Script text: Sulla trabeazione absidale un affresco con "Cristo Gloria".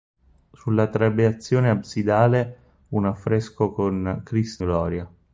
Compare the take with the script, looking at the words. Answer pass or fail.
pass